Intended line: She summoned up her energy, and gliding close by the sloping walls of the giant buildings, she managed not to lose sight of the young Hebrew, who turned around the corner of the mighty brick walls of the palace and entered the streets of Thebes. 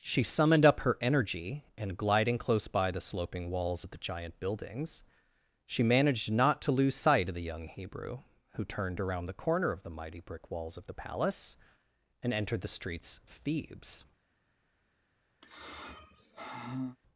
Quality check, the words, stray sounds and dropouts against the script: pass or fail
fail